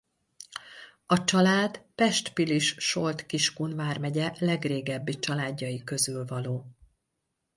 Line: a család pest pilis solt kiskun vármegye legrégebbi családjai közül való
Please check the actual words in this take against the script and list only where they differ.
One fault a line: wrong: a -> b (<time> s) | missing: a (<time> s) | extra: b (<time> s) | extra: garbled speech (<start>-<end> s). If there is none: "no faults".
no faults